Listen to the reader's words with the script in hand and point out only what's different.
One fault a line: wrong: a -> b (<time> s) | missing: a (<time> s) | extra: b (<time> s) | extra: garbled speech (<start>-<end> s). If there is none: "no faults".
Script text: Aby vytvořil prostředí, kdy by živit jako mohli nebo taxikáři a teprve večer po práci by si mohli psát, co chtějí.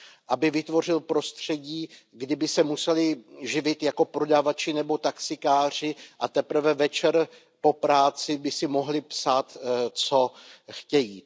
extra: se museli (2.5 s)
wrong: mohli -> prodavači (4.0 s)